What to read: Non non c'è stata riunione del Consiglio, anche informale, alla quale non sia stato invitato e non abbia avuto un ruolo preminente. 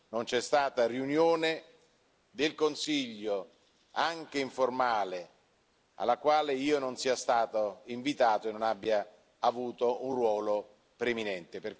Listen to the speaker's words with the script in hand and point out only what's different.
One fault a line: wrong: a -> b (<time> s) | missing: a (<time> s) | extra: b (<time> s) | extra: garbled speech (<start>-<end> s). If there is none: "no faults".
missing: non (0.2 s)
extra: io (6.5 s)